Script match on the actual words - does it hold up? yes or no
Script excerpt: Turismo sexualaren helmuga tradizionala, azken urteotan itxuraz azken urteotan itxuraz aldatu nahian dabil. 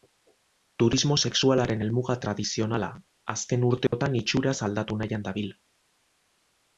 no